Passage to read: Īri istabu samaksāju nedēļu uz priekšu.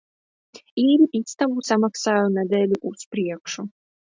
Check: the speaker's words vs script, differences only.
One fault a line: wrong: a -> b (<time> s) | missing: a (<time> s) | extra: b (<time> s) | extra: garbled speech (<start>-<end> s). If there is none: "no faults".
no faults